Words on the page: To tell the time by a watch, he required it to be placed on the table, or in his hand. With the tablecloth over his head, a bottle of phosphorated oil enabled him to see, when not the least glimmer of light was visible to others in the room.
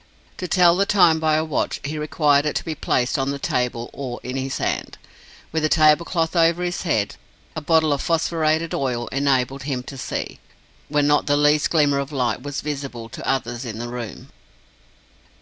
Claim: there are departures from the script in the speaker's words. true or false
false